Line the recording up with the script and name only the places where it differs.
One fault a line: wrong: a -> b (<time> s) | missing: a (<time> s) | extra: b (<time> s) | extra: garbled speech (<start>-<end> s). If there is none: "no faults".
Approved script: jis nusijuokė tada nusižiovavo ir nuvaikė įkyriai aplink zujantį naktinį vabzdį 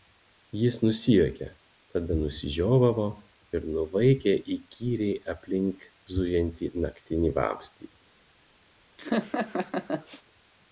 no faults